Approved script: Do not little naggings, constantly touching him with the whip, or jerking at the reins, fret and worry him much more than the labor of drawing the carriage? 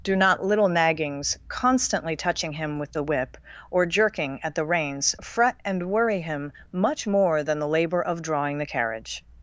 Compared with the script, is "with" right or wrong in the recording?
right